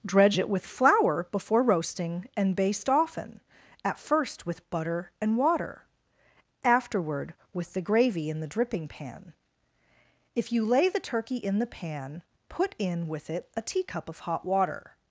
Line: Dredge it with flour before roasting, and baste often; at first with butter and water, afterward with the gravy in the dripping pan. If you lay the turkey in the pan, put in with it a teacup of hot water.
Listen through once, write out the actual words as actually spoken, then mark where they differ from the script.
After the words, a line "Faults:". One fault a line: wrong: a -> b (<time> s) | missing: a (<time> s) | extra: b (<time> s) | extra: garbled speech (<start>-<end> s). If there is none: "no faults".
Dredge it with flour before roasting, and baste often; at first with butter and water, afterward with the gravy in the dripping pan. If you lay the turkey in the pan, put in with it a teacup of hot water.
Faults:
no faults